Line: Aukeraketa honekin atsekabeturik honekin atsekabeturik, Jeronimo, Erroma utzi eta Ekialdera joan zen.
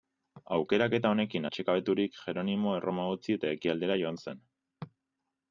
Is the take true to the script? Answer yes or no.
no